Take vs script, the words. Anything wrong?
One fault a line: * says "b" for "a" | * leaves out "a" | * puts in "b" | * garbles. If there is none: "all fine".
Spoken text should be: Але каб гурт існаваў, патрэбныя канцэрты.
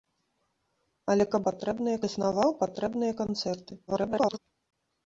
* says "патрэбныя" for "гурт"
* garbles